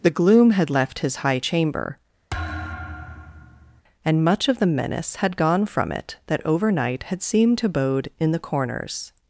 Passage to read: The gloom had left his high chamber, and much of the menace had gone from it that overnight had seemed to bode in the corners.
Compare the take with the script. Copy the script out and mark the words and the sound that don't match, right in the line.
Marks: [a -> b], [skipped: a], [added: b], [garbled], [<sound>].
The gloom had left his high chamber, [thud] and much of the menace had gone from it that overnight had seemed to bode in the corners.